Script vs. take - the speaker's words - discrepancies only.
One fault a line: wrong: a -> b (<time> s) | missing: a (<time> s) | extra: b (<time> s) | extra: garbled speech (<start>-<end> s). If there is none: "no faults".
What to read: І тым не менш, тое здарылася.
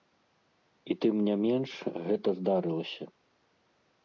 wrong: тое -> гэта (2.1 s)